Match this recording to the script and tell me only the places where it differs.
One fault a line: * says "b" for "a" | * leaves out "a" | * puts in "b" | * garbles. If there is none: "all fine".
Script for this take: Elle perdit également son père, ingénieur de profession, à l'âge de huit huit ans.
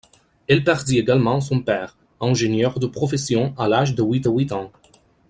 all fine